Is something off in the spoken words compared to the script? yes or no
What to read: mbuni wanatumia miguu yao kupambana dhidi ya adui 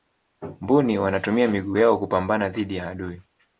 no